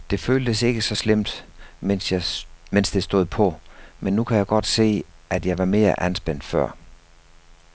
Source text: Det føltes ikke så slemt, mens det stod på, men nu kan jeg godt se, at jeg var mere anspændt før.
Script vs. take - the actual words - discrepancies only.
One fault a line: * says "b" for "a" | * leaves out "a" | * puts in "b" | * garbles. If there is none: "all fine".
all fine